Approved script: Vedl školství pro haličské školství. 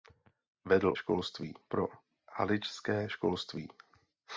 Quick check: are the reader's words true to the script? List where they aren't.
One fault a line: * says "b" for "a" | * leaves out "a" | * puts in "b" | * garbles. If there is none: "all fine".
all fine